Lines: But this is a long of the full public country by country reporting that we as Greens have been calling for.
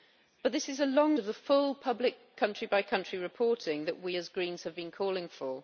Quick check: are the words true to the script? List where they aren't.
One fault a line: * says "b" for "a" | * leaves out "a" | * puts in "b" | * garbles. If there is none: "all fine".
all fine